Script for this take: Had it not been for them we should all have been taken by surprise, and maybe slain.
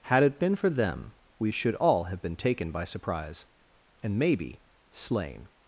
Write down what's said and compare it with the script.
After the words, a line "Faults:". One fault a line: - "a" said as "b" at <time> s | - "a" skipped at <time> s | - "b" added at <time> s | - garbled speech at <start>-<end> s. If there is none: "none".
Had it been for them we should all have been taken by surprise, and maybe slain.
Faults:
- "not" skipped at 0.4 s